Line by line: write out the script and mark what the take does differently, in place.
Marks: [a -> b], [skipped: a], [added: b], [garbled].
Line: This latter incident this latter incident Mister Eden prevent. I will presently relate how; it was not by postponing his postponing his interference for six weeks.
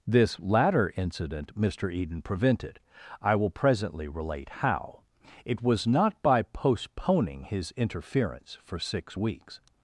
This latter incident [skipped: this latter incident] Mister Eden [prevent. -> prevented] I will presently relate how; it was not by postponing his [skipped: postponing his] interference for six weeks.